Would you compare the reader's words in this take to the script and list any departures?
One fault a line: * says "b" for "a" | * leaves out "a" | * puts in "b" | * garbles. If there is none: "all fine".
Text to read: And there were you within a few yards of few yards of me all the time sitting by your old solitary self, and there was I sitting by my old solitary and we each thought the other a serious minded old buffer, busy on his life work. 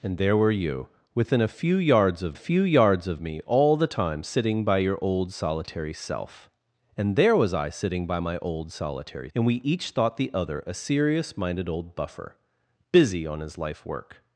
all fine